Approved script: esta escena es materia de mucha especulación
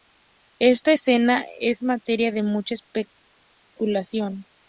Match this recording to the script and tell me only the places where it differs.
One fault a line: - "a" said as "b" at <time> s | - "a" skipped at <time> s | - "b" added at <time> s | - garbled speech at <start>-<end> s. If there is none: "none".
none